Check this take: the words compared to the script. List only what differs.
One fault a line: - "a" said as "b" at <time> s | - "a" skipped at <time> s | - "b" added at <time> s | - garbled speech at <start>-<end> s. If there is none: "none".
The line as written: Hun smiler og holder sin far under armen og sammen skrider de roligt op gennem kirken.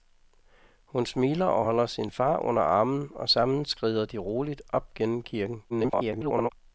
- garbled speech at 5.7-6.5 s